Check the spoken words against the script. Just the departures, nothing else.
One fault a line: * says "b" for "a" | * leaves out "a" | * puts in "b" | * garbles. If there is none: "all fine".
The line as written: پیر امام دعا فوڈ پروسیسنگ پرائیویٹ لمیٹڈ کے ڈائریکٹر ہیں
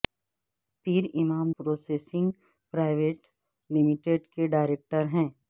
* leaves out "دعا فوڈ"